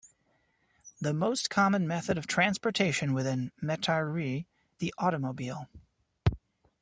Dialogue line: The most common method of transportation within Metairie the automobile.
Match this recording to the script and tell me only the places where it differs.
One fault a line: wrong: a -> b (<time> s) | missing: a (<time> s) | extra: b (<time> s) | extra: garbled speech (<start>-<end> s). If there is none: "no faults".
no faults